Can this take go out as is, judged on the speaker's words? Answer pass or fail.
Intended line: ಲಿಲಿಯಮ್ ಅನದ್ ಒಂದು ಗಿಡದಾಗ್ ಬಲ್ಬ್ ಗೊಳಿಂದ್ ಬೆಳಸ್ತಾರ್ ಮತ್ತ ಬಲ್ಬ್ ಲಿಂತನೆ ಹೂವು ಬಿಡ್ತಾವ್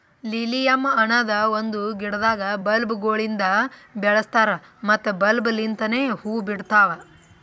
pass